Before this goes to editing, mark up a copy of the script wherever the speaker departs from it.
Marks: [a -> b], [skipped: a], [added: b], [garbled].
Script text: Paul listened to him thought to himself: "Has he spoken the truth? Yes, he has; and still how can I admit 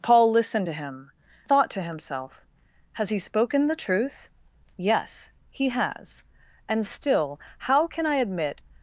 Paul listened to him thought to himself: "Has he spoken the truth? Yes, he has; and still how can I admit